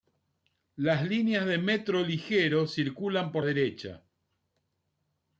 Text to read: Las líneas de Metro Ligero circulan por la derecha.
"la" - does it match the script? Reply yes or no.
no